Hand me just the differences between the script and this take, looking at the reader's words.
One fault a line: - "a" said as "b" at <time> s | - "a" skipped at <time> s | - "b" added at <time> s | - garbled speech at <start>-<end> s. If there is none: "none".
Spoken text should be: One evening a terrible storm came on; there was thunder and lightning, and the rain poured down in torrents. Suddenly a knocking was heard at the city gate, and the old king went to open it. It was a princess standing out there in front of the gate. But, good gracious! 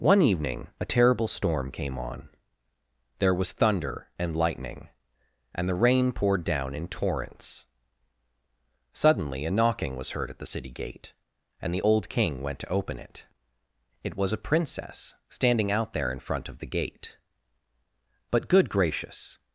none